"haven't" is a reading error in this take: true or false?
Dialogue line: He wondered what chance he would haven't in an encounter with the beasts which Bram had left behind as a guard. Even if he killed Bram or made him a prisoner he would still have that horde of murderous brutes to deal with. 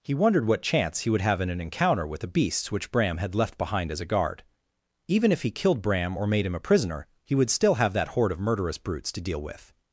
true